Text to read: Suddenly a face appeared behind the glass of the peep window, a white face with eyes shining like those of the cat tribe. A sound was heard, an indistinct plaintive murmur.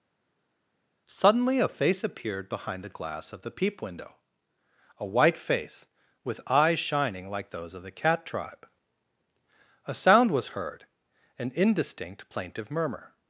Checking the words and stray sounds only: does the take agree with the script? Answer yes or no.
yes